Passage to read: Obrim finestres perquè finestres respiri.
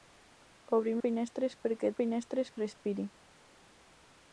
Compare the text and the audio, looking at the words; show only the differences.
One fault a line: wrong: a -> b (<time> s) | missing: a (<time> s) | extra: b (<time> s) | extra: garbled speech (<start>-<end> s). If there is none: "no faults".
no faults